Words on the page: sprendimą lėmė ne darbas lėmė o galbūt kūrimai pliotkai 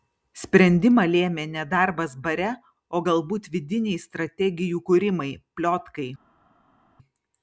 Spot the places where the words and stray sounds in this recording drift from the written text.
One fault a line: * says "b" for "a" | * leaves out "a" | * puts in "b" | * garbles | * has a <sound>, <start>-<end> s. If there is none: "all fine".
* says "bare" for "lėmė"
* puts in "vidiniai strategijų"